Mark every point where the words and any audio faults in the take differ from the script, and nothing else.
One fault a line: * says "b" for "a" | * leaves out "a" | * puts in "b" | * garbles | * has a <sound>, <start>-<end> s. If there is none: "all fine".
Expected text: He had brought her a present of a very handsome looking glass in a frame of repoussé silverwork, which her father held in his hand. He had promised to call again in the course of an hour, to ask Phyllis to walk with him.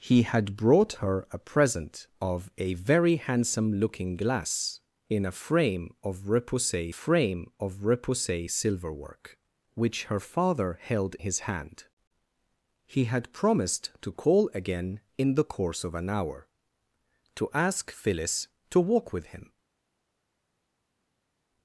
* puts in "frame of repoussé"
* leaves out "in"